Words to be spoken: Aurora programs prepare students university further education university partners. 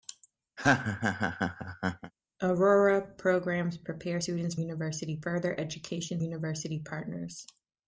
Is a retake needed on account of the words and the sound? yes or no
yes